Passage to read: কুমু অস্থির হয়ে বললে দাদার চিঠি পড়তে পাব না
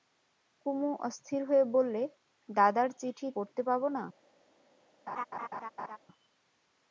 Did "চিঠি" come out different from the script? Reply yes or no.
no